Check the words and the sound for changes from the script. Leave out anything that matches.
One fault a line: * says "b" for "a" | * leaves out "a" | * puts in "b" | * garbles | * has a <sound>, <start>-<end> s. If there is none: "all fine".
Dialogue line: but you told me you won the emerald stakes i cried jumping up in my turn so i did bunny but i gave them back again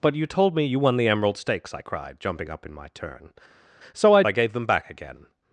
* leaves out "did bunny but"